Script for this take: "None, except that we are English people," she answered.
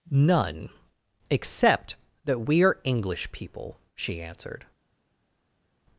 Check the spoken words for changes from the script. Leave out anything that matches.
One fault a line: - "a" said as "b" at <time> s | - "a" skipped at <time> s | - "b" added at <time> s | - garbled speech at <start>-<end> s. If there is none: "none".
none